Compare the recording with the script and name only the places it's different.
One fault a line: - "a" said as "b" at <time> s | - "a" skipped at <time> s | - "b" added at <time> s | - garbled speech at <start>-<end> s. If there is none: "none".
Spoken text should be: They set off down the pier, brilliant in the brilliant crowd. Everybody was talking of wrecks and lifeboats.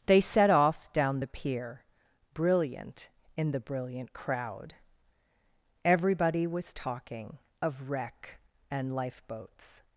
- "wrecks" said as "wreck" at 7.9 s